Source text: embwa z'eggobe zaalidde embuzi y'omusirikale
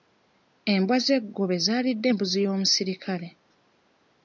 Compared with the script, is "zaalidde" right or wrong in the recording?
right